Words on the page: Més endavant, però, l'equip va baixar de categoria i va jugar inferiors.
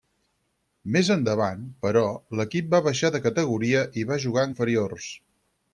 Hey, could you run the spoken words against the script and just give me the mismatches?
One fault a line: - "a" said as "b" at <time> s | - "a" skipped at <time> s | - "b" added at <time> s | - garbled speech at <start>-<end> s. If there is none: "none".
none